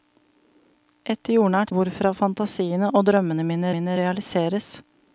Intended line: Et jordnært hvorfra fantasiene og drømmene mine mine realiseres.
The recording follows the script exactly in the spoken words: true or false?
true